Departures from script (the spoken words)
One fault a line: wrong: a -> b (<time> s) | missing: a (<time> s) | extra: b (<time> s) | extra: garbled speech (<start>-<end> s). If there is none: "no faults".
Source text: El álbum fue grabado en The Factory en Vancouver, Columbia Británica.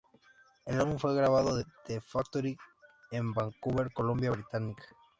no faults